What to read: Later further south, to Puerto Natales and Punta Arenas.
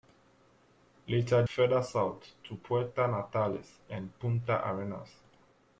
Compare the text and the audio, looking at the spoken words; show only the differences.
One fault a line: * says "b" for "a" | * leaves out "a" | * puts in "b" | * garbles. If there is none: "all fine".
all fine